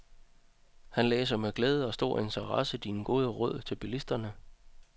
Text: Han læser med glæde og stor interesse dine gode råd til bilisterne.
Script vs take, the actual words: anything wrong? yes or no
no